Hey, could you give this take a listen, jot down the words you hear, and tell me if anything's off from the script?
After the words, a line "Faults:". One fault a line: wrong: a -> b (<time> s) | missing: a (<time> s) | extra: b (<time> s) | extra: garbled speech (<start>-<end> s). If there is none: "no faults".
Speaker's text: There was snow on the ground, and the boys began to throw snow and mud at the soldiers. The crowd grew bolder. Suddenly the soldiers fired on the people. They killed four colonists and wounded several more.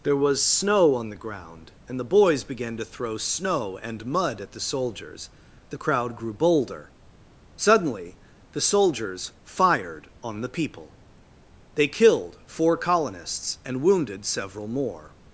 There was snow on the ground, and the boys began to throw snow and mud at the soldiers. The crowd grew bolder. Suddenly the soldiers fired on the people. They killed four colonists and wounded several more.
Faults:
no faults